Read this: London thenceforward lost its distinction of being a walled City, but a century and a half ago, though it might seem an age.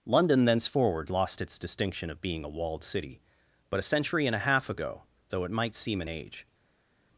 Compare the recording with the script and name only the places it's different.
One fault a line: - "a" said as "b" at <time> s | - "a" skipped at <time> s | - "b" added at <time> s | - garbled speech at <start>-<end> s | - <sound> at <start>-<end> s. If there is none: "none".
none